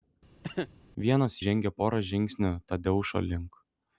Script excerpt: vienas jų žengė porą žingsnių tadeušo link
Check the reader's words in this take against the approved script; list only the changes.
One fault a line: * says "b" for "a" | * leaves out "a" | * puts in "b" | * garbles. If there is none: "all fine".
* leaves out "jų"